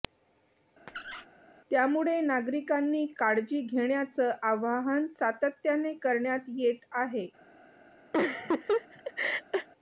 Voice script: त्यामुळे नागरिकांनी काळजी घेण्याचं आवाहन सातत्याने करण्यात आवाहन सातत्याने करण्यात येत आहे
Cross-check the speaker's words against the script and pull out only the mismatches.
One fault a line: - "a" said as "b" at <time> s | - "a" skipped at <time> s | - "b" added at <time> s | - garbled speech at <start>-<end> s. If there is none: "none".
- "आवाहन सातत्याने करण्यात" skipped at 6.5 s